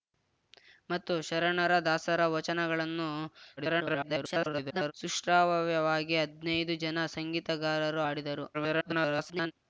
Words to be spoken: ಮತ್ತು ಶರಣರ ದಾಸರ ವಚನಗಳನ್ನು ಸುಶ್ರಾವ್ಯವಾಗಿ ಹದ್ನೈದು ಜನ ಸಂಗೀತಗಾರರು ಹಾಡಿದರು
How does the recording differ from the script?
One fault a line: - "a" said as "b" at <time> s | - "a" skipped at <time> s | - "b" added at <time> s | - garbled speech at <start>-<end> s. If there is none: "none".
- garbled speech at 3.6-4.9 s
- garbled speech at 8.5-9.5 s